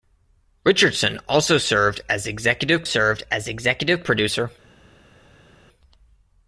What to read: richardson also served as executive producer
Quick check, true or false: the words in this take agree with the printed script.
false